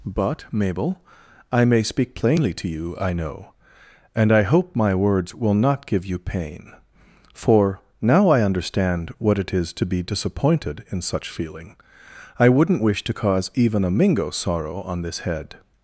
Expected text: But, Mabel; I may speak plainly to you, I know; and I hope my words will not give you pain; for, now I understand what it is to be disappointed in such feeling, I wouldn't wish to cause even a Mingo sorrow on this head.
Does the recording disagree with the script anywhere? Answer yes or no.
no